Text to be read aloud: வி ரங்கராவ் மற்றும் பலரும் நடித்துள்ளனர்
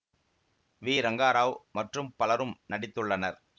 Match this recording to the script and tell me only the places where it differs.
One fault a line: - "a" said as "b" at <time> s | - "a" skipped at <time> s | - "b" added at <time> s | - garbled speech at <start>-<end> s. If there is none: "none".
none